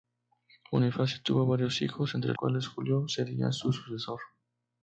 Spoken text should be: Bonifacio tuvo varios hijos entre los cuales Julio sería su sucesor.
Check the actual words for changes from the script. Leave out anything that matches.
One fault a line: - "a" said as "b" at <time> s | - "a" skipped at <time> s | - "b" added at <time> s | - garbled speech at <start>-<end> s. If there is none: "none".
- "los" skipped at 2.3 s